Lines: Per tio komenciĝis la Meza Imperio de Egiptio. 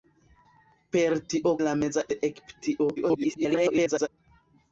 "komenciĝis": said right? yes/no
no